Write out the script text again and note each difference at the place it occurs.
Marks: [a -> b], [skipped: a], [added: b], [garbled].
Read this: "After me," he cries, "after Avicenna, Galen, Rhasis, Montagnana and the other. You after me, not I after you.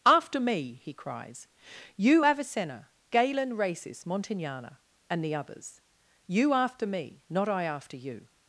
"After me," he cries, ["after -> you] Avicenna, Galen, Rhasis, Montagnana and the [other. -> others] You after me, not I after you.